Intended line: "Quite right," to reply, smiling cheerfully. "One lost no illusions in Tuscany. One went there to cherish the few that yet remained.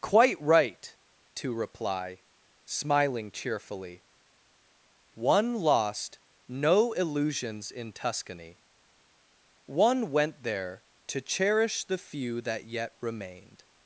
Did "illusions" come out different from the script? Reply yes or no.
no